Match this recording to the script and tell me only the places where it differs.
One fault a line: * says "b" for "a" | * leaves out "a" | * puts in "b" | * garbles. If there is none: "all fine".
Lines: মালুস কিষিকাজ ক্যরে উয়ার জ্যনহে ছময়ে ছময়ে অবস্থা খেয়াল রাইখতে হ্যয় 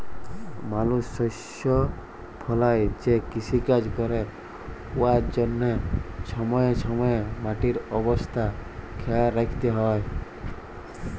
* puts in "শস্য ফলাঁয় যে"
* puts in "মাটির"